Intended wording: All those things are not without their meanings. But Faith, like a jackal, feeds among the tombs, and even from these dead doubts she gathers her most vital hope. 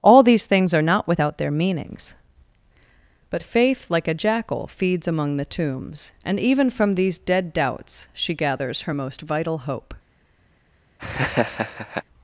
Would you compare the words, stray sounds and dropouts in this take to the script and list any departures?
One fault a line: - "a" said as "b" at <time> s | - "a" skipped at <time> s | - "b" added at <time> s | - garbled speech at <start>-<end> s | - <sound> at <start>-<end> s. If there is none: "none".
- "those" said as "these" at 0.2 s
- laugh at 11.0-12.0 s